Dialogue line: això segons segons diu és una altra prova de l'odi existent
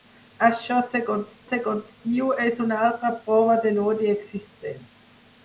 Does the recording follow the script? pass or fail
pass